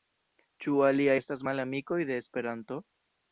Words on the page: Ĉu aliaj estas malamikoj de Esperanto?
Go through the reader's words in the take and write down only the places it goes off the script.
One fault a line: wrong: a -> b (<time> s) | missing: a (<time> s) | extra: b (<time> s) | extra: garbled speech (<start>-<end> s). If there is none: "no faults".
no faults